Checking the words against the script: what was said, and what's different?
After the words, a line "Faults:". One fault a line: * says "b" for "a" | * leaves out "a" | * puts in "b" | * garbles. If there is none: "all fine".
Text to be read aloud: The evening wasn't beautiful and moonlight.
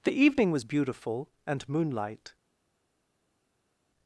The evening was beautiful and moonlight.
Faults:
* says "was" for "wasn't"